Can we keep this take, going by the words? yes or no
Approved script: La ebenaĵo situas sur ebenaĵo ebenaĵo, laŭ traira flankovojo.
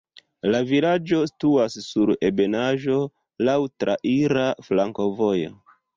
no